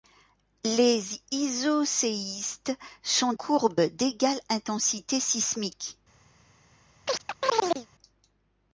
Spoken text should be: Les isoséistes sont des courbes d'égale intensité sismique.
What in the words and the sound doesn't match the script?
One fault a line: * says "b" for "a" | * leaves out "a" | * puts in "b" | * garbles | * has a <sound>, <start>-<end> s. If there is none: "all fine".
* leaves out "des"
* has a chirp, 7.1-7.9 s